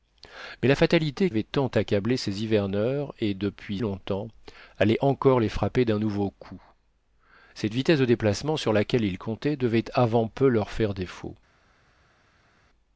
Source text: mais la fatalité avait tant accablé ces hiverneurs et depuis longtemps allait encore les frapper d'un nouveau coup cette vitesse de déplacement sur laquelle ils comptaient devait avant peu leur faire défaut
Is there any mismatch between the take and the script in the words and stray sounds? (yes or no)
no